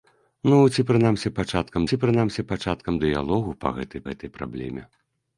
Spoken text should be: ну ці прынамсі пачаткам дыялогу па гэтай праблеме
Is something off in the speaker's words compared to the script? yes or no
yes